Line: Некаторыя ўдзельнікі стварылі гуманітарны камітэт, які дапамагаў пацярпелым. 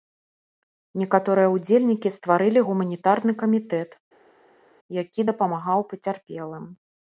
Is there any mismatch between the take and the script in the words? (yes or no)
no